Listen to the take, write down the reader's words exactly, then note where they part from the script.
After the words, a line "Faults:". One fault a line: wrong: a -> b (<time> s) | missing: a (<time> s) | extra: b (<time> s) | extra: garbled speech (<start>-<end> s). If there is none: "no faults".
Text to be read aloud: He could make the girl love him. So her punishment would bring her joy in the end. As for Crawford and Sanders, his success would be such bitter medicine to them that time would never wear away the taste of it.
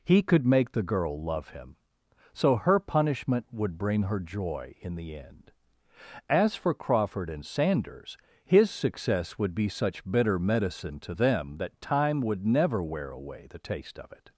He could make the girl love him. So her punishment would bring her joy in the end. As for Crawford and Sanders, his success would be such bitter medicine to them that time would never wear away the taste of it.
Faults:
no faults